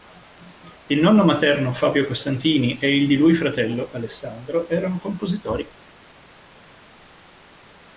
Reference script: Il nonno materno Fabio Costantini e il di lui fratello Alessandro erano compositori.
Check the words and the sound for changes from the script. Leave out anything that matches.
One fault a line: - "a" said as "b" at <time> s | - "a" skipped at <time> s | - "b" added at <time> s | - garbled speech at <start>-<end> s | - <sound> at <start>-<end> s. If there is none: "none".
none